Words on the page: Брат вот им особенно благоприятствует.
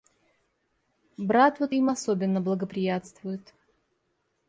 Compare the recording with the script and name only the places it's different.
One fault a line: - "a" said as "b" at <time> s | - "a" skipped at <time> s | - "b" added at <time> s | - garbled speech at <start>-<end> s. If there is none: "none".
none